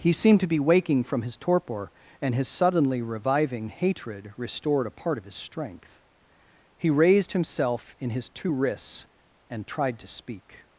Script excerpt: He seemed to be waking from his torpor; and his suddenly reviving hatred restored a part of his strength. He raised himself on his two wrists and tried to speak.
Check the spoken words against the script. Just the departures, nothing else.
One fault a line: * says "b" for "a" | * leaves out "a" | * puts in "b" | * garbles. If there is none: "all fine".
* says "in" for "on"